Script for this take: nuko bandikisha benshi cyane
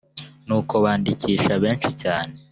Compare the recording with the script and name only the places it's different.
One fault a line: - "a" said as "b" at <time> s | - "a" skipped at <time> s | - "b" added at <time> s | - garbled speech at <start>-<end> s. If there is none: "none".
none